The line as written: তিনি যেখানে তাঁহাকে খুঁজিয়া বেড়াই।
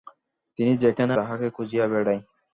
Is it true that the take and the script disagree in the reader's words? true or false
false